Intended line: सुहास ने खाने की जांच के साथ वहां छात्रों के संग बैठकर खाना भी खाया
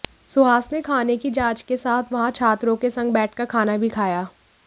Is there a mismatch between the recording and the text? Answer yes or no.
no